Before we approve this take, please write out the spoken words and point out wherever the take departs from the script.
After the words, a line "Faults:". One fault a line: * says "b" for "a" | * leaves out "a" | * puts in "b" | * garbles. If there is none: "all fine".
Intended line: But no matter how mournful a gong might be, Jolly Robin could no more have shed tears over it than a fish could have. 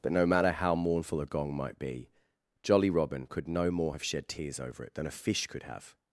But no matter how mournful a gong might be, Jolly Robin could no more have shed tears over it than a fish could have.
Faults:
all fine